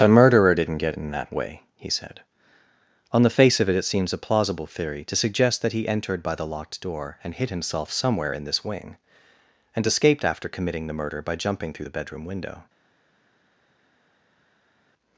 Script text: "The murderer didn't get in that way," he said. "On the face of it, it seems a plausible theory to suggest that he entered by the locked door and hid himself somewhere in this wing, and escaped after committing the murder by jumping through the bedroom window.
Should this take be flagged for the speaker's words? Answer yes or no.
yes